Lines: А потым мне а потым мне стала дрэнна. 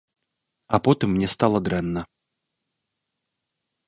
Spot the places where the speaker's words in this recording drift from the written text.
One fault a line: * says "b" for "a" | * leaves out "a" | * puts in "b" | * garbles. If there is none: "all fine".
* leaves out "а потым мне"